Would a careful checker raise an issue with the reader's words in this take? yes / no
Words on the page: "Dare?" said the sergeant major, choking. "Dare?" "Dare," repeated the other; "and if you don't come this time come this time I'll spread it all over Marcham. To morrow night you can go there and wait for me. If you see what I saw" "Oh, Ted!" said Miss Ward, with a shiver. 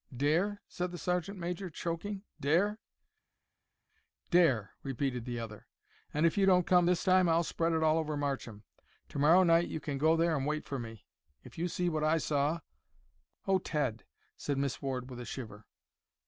yes